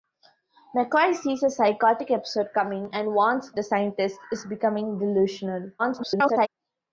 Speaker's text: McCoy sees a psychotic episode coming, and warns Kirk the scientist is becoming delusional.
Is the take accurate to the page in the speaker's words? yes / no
no